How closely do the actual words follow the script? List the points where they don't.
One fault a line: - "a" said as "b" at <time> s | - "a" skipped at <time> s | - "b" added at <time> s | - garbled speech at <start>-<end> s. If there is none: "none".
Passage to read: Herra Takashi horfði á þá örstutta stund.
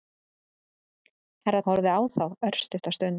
- "Takashi" skipped at 1.6 s